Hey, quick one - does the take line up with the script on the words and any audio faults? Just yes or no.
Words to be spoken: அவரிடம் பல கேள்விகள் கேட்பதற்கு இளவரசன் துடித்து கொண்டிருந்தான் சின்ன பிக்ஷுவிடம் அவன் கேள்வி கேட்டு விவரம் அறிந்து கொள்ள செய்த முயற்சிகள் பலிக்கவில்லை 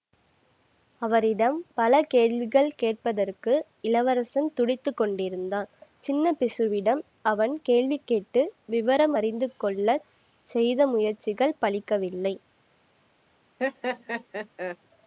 no